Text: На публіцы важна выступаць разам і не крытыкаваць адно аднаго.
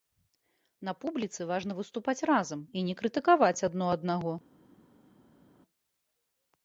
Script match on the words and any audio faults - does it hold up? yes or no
yes